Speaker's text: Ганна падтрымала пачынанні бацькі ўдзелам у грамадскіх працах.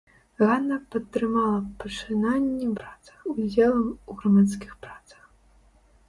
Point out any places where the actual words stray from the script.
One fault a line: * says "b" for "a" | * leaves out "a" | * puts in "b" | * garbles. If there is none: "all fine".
* says "працах" for "бацькі"